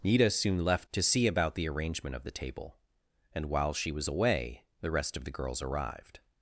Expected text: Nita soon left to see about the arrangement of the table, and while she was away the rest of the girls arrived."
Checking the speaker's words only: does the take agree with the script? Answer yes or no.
yes